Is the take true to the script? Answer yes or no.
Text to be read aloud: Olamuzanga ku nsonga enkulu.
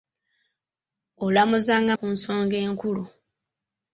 yes